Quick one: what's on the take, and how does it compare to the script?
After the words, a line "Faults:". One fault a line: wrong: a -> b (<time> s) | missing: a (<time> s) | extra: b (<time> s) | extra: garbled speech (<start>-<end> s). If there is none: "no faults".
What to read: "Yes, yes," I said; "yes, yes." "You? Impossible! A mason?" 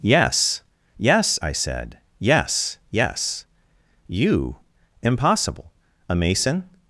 "Yes, yes," I said; "yes, yes." "You? Impossible! A mason?"
Faults:
no faults